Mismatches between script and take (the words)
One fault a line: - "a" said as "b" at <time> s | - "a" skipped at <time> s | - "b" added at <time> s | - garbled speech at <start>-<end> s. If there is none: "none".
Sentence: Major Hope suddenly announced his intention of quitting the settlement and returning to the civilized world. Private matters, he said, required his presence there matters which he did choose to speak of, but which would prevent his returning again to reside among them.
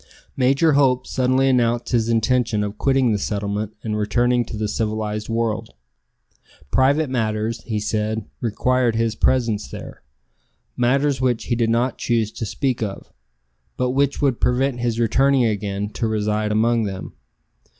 - "not" added at 11.7 s